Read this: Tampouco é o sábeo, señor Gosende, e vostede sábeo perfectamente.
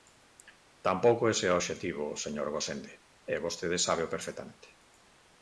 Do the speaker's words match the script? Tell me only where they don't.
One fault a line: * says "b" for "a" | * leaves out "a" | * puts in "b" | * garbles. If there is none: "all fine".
* puts in "ese"
* says "obxectivo" for "sábeo"